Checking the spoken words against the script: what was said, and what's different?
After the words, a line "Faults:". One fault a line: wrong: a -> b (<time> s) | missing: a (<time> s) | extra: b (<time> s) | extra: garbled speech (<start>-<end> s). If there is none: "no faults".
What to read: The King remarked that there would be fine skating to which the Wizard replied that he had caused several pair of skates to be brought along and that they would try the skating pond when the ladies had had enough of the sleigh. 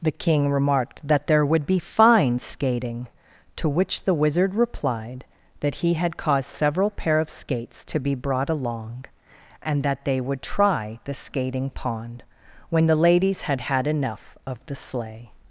The King remarked that there would be fine skating to which the Wizard replied that he had caused several pair of skates to be brought along and that they would try the skating pond when the ladies had had enough of the sleigh.
Faults:
no faults